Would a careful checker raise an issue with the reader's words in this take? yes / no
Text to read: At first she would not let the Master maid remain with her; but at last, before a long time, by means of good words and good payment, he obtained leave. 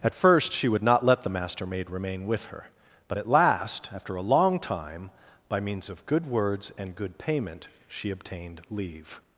yes